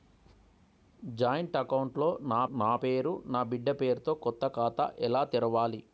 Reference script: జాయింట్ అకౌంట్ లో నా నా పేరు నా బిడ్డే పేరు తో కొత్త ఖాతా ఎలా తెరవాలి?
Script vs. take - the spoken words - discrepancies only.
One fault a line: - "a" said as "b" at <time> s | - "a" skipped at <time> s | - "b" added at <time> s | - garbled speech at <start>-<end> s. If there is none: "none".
none